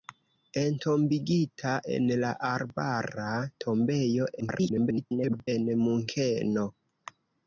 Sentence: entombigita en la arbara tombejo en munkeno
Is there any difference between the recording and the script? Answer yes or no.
yes